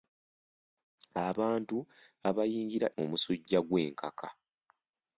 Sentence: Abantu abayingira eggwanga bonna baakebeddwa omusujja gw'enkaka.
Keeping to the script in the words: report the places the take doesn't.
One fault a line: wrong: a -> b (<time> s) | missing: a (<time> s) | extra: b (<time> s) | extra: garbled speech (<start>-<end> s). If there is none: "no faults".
missing: eggwanga bonna baakebeddwa (2.9 s)